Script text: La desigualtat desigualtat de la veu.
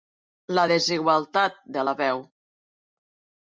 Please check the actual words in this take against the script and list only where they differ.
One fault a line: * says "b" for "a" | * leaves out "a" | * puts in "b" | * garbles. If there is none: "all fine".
* leaves out "desigualtat"